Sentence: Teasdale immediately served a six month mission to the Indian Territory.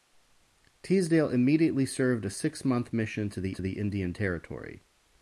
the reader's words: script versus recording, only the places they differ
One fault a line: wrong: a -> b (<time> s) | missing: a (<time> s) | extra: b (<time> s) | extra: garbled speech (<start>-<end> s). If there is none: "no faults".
extra: to the (3.5 s)